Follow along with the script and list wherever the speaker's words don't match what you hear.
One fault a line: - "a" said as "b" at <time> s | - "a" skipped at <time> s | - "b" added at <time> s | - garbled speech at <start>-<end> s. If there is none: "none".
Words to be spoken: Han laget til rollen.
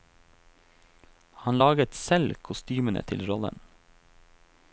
- "selv kostymene" added at 1.9 s